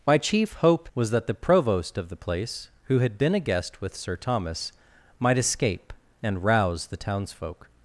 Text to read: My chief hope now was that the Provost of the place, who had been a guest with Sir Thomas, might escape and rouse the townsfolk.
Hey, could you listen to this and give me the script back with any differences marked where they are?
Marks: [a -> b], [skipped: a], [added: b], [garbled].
My chief hope [skipped: now] was that the Provost of the place, who had been a guest with Sir Thomas, might escape and rouse the townsfolk.